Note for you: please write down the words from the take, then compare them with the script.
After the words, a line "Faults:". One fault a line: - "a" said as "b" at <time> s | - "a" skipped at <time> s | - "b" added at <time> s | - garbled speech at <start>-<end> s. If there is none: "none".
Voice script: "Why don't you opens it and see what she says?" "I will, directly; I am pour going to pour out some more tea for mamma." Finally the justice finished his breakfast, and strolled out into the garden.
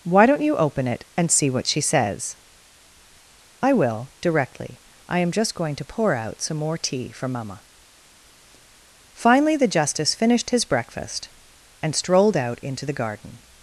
"Why don't you open it and see what she says?" "I will, directly; I am just going to pour out some more tea for mamma." Finally the justice finished his breakfast, and strolled out into the garden.
Faults:
- "opens" said as "open" at 0.6 s
- "pour" said as "just" at 5.3 s